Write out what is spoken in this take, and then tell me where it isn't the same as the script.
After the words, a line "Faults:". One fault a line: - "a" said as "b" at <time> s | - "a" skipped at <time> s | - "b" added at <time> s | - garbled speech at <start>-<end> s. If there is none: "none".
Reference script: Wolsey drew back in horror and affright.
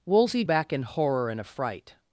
Wolsey back in horror and affright.
Faults:
- "drew" skipped at 0.4 s